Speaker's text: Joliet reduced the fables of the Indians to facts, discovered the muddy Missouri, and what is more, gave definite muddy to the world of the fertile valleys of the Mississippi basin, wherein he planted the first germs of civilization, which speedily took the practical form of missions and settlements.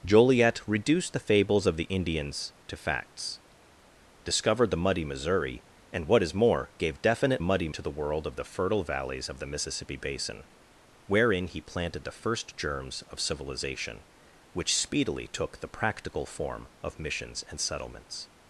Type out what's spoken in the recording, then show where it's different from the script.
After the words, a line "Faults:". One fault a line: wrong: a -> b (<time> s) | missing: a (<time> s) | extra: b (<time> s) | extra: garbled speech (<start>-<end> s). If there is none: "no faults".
Joliet reduced the fables of the Indians to facts, discovered the muddy Missouri, and what is more, gave definite muddy to the world of the fertile valleys of the Mississippi basin, wherein he planted the first germs of civilization, which speedily took the practical form of missions and settlements.
Faults:
no faults